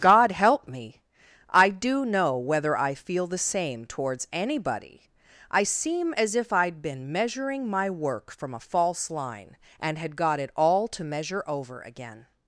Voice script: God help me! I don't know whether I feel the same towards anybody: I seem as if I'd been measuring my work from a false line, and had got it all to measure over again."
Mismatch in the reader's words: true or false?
true